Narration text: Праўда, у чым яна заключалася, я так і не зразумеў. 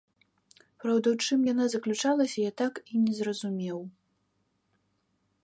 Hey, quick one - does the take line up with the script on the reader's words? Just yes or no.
yes